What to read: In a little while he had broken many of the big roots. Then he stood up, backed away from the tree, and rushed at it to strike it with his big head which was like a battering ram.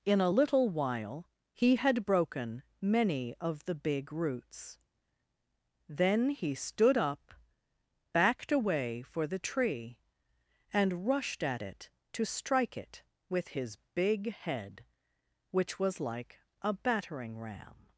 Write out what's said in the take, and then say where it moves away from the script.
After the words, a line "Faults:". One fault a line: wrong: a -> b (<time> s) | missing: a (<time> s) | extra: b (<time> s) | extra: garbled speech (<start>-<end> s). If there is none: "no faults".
In a little while he had broken many of the big roots. Then he stood up, backed away for the tree, and rushed at it to strike it with his big head which was like a battering ram.
Faults:
wrong: from -> for (9.0 s)